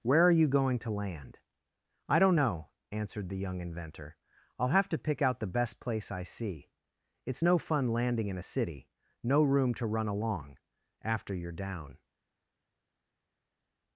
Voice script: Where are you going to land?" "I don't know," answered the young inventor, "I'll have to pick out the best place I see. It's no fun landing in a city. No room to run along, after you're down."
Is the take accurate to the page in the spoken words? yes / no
yes